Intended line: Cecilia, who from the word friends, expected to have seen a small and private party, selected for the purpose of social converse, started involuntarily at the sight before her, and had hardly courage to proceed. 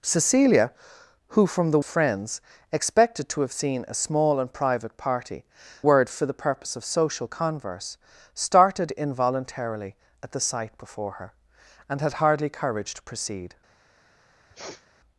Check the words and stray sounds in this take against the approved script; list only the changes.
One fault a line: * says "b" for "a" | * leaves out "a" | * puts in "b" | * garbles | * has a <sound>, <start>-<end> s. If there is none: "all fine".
* leaves out "word"
* says "word" for "selected"
* has a sniff, 14.5-14.9 s